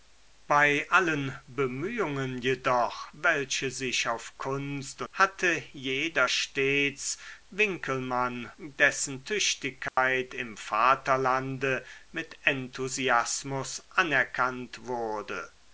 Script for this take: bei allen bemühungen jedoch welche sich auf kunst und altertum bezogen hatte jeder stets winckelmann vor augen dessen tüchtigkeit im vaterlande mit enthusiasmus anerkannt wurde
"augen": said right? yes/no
no